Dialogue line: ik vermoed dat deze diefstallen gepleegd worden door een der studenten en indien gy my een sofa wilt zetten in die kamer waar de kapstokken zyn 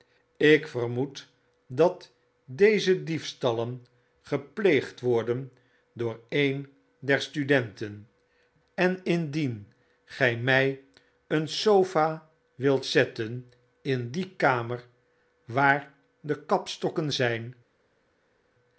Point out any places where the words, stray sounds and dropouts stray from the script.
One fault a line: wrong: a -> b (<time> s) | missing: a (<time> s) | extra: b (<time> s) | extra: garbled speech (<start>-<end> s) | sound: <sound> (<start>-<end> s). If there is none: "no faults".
no faults